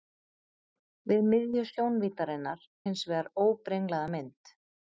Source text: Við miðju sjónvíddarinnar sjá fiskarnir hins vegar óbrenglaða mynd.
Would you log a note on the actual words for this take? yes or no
yes